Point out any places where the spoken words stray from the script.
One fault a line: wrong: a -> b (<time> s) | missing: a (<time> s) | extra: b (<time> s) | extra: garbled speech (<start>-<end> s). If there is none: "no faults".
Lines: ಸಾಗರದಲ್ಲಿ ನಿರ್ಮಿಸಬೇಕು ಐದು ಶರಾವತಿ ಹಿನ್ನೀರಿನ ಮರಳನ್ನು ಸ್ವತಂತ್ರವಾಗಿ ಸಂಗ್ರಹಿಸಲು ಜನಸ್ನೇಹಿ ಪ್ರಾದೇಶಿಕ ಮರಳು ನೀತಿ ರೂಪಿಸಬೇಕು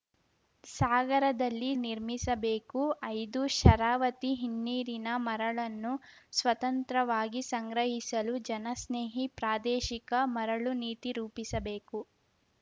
no faults